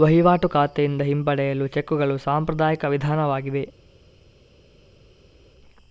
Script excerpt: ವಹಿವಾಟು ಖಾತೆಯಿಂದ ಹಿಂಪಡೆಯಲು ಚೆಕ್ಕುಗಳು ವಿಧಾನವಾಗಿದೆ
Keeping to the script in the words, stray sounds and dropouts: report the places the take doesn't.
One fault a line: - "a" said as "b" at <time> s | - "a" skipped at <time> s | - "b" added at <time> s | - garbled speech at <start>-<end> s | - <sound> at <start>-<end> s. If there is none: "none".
- "ಸಾಂಪ್ರದಾಯಿಕ" added at 2.2 s